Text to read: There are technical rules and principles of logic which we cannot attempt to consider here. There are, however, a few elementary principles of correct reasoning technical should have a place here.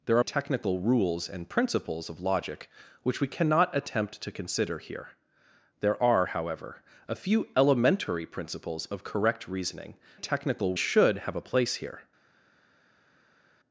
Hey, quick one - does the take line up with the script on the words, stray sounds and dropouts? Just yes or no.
yes